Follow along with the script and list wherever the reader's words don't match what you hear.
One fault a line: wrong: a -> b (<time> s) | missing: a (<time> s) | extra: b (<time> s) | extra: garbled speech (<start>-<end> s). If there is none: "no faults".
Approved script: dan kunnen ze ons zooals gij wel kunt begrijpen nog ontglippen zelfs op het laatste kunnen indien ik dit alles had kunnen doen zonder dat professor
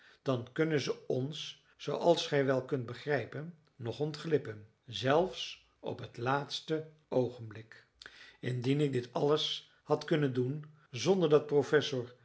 wrong: kunnen -> oogenblik (7.1 s)